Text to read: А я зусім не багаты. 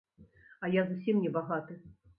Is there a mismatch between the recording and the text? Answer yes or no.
no